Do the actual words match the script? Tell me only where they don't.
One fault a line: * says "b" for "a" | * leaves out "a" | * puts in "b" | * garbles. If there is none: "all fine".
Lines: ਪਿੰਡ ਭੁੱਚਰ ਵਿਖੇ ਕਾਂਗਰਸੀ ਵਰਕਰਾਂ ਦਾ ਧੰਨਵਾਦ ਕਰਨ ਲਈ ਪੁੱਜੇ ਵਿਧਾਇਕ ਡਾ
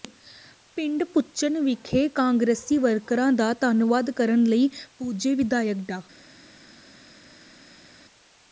all fine